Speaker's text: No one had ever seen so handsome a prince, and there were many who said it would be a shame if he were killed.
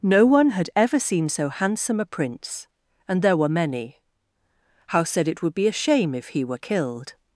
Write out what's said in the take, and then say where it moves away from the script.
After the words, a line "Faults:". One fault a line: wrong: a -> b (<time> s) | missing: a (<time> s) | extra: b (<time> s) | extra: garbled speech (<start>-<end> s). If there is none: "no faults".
No one had ever seen so handsome a prince, and there were many how said it would be a shame if he were killed.
Faults:
wrong: who -> how (4.9 s)